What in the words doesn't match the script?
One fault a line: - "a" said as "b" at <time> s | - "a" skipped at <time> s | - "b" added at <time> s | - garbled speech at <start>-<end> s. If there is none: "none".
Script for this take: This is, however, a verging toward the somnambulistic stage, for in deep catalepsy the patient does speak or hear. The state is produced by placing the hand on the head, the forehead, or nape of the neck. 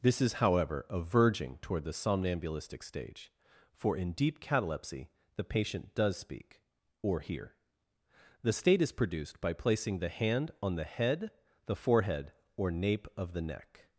none